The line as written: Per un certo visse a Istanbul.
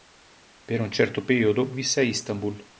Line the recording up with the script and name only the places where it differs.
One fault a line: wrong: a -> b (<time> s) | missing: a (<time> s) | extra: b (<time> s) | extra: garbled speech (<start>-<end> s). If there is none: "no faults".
extra: periodo (1.2 s)